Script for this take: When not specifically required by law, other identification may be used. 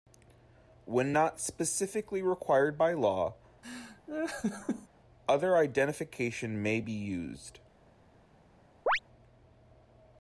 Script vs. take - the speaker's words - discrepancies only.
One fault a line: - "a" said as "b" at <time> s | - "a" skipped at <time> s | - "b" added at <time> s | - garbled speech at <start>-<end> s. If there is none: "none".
none